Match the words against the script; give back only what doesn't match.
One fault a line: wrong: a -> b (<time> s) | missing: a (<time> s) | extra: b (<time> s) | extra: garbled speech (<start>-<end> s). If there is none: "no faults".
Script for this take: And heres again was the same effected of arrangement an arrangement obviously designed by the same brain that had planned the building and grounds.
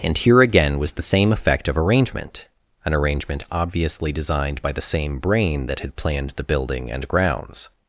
wrong: heres -> here (0.2 s)
wrong: effected -> effect (1.3 s)